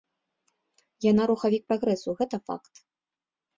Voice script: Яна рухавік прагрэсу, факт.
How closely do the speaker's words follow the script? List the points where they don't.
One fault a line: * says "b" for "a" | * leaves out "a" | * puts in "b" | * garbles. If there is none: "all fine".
* puts in "гэта"